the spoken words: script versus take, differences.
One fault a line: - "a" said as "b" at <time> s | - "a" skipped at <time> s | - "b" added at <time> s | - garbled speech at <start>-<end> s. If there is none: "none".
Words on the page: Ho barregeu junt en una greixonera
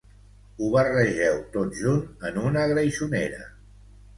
- "tot" added at 1.6 s